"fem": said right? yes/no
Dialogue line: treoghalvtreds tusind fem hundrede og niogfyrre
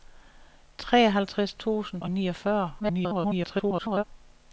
no